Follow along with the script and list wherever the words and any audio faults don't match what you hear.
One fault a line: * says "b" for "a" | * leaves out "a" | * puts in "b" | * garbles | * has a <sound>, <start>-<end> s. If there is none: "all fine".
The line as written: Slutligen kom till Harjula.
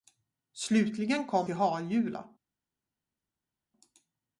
all fine